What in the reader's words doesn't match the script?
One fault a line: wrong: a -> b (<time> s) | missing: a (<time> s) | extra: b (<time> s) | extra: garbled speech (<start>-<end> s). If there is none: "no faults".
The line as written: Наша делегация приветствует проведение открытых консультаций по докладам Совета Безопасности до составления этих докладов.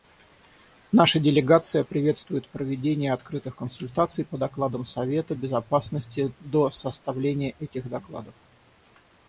no faults